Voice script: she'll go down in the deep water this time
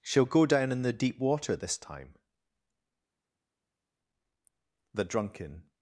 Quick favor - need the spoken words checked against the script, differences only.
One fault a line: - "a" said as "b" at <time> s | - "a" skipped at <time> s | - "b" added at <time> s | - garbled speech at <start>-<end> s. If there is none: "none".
- "the drunken" added at 4.9 s